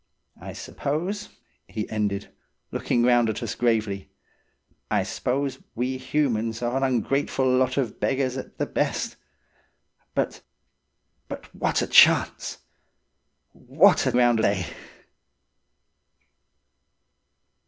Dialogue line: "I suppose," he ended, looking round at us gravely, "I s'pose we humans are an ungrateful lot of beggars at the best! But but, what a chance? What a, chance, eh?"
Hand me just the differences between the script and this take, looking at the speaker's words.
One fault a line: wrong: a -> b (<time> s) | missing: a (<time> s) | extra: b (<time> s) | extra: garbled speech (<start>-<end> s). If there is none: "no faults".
wrong: chance -> round (14.1 s)